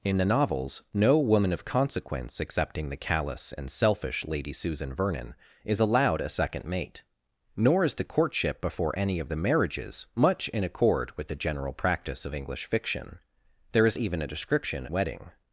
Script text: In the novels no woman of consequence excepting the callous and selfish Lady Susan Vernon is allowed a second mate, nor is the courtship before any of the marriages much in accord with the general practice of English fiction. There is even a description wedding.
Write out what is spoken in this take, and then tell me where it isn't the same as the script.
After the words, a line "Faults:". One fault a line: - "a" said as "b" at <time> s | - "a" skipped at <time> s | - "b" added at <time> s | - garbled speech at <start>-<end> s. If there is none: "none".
In the novels no woman of consequence excepting the callous and selfish Lady Susan Vernon is allowed a second mate, nor is the courtship before any of the marriages much in accord with the general practice of English fiction. There is even a description wedding.
Faults:
none